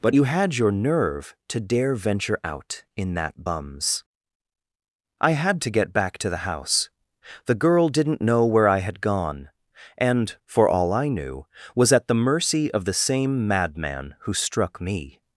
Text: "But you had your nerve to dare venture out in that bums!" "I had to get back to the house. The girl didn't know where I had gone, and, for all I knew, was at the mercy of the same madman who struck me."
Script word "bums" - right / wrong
right